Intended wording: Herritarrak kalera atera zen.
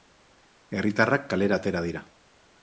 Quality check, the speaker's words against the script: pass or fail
fail